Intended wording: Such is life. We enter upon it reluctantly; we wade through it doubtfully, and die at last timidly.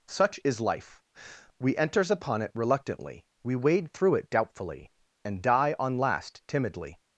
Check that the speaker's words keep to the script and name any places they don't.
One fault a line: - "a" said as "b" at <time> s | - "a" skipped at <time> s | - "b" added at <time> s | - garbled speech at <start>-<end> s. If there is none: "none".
- "enter" said as "enters" at 1.8 s
- "at" said as "on" at 5.8 s